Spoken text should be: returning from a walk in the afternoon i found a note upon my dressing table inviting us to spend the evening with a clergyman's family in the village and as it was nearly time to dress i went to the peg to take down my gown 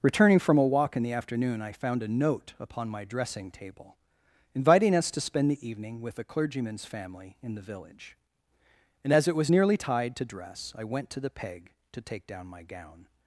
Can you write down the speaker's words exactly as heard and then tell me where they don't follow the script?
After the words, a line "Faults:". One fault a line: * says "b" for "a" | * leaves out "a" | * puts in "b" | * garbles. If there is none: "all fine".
returning from a walk in the afternoon i found a note upon my dressing table inviting us to spend the evening with a clergyman's family in the village and as it was nearly tide to dress i went to the peg to take down my gown
Faults:
* says "tide" for "time"